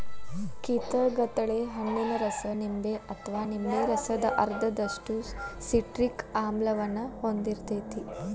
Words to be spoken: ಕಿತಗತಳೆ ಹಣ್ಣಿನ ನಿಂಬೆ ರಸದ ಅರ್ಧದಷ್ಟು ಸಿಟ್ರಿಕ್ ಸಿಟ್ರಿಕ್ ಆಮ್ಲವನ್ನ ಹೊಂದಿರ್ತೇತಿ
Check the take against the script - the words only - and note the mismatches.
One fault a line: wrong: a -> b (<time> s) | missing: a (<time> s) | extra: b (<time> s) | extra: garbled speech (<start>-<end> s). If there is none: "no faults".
extra: ರಸ (2.2 s)
extra: ಅಥವಾ ನಿಂಬೆ (3.1 s)
missing: ಸಿಟ್ರಿಕ್ (6.2 s)